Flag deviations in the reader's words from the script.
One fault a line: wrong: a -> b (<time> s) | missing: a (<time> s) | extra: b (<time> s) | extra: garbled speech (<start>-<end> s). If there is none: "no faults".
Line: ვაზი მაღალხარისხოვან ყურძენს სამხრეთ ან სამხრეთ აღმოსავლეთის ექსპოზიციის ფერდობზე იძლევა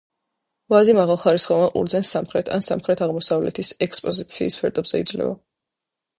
no faults